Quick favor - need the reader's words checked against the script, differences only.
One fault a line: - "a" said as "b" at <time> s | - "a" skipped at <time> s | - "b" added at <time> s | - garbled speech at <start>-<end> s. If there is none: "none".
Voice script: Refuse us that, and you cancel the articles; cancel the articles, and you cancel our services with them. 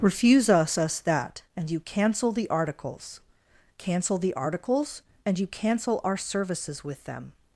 - "us" added at 0.8 s